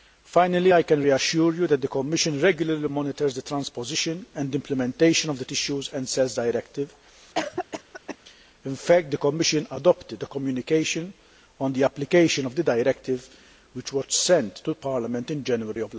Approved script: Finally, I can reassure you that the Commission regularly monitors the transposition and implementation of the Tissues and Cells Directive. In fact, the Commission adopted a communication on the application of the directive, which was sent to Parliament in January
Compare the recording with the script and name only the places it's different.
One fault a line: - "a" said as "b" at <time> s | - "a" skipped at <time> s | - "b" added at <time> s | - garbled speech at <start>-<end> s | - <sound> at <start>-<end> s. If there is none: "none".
- cough at 7.3-8.2 s